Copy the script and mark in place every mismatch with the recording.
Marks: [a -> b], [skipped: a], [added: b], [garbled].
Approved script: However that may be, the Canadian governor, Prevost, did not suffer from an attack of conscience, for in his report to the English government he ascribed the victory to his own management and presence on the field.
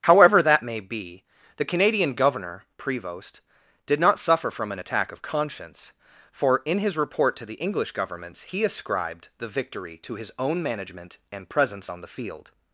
However that may be, the Canadian governor, Prevost, did not suffer from an attack of conscience, for in his report to the English [government -> governments] he ascribed the victory to his own management and presence on the field.